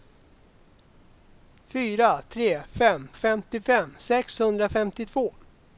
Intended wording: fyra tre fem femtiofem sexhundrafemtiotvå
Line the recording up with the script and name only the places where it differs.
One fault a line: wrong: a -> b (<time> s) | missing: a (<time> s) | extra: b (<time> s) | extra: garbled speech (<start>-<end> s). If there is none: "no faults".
no faults